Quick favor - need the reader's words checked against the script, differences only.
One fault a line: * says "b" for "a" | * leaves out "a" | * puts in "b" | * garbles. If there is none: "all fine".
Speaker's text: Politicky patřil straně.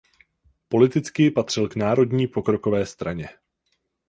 * puts in "k Národní pokrokové"